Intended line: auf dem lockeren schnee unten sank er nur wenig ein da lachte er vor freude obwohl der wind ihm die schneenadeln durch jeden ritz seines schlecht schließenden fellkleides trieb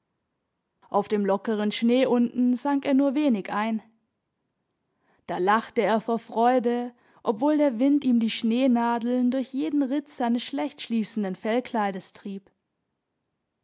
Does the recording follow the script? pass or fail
pass